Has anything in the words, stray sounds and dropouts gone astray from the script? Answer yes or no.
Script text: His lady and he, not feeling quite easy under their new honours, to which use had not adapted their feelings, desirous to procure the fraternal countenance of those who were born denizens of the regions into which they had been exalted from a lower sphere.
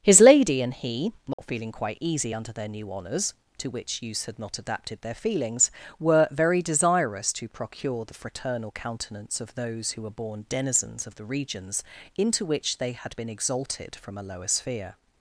yes